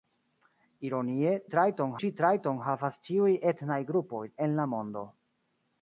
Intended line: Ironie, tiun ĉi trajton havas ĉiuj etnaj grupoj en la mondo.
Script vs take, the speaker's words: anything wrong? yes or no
yes